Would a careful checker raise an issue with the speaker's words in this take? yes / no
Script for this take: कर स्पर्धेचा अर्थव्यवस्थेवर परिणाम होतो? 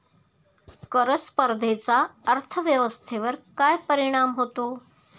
yes